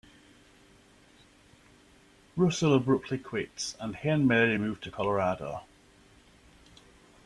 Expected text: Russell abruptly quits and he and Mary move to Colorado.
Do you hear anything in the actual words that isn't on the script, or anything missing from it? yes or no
no